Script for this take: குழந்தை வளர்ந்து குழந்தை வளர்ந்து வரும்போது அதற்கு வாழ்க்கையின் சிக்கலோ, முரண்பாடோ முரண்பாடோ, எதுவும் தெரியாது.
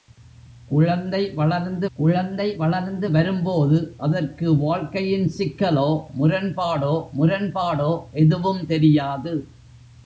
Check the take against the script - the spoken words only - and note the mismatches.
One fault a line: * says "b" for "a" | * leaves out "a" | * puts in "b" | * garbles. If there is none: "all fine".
all fine